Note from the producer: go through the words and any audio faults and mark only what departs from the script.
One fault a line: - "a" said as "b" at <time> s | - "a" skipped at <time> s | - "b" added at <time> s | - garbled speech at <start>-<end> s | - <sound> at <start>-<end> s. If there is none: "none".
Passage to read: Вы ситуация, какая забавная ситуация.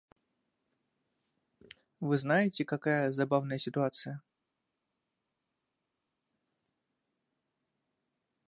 - "ситуация" said as "знаете" at 2.1 s